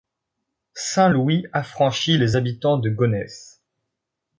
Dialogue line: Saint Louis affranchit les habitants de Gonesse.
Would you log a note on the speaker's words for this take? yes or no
no